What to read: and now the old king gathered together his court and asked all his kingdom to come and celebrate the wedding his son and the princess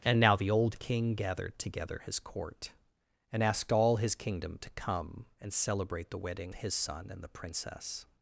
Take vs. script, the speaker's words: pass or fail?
pass